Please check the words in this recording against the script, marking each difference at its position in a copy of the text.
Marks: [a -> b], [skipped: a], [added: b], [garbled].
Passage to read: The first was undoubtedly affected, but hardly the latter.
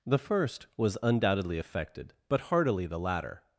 The first was undoubtedly affected, but [hardly -> heartily] the latter.